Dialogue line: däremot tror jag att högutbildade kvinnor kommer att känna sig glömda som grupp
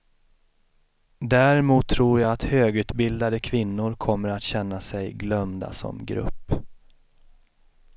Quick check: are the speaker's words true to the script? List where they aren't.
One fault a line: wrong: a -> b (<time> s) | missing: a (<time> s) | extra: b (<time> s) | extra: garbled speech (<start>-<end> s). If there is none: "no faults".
no faults